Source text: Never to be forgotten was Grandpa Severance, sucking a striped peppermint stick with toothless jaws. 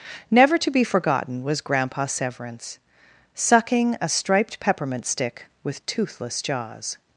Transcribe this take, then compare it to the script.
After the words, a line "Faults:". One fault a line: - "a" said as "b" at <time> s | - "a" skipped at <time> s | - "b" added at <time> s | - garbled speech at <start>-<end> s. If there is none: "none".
Never to be forgotten was Grandpa Severance, sucking a striped peppermint stick with toothless jaws.
Faults:
none